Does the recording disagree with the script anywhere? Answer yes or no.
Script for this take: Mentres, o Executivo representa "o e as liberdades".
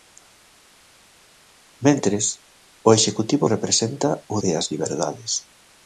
no